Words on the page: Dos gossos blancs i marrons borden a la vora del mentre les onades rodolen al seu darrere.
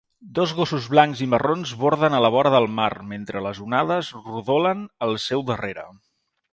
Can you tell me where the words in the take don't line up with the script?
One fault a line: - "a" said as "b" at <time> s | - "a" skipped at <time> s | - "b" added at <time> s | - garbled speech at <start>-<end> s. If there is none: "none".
- "mar" added at 2.8 s